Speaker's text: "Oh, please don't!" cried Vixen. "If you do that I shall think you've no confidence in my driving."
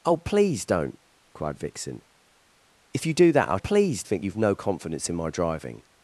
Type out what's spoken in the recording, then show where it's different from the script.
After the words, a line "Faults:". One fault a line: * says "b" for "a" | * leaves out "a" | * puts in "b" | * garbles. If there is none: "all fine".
"Oh, please don't!" cried Vixen. "If you do that I please think you've no confidence in my driving."
Faults:
* says "please" for "shall"